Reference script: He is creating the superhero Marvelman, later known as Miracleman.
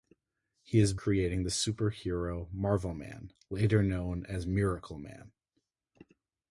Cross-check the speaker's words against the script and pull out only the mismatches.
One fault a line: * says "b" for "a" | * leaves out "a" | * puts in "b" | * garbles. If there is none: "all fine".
all fine